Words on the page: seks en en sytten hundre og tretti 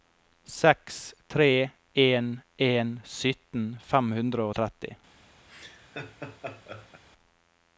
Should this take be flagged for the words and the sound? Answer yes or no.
yes